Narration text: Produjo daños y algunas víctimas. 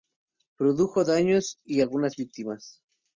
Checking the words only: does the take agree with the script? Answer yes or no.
yes